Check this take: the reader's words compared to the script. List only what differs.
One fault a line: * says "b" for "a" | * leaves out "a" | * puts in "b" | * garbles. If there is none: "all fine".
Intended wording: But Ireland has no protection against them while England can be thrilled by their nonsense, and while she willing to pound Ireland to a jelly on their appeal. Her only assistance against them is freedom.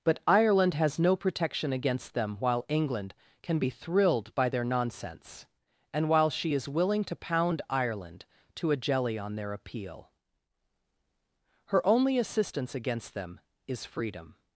* puts in "is"